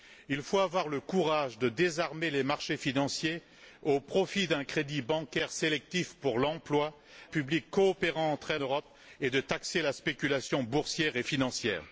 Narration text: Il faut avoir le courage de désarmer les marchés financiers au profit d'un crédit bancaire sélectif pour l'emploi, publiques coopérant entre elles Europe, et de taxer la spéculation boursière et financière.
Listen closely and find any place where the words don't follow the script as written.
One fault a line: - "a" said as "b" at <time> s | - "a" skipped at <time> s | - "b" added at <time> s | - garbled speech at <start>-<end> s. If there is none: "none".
none